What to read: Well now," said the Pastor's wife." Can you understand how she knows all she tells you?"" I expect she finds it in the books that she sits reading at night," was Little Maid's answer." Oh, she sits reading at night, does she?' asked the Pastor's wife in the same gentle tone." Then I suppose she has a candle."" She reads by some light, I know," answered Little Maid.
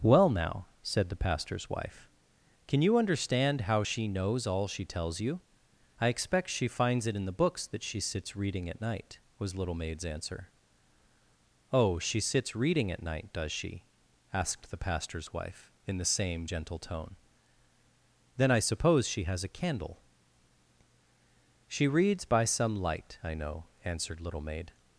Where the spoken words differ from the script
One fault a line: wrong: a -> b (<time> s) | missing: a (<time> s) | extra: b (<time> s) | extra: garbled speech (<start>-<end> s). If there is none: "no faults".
no faults